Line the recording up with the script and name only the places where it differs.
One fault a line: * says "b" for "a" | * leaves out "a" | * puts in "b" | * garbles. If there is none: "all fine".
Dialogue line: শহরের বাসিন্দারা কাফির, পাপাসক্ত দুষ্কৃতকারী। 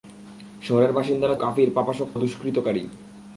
all fine